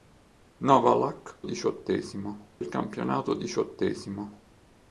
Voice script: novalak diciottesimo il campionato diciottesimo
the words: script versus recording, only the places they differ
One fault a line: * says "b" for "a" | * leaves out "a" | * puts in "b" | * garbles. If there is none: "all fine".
all fine